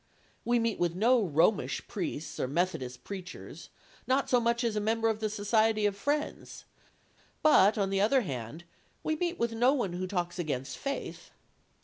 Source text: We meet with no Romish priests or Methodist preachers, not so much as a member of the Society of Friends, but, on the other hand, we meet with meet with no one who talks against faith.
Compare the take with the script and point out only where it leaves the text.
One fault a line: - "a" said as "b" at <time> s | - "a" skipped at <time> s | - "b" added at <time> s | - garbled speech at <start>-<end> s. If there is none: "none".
- "meet with" skipped at 9.5 s